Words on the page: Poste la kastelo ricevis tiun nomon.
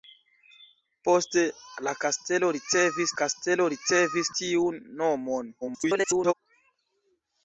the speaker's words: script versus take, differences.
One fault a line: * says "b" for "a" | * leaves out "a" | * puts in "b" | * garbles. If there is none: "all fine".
* puts in "kastelo ricevis"
* garbles